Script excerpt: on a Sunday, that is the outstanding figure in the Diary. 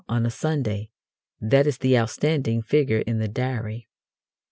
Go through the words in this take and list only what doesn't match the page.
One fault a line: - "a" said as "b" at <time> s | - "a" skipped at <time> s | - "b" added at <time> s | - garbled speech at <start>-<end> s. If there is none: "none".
none